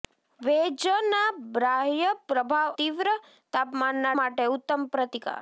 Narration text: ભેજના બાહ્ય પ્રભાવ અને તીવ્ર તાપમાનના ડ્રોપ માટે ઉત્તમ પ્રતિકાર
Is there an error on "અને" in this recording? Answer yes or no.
yes